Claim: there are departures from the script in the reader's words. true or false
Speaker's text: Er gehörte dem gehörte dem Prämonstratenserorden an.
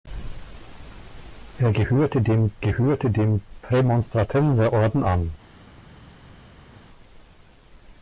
false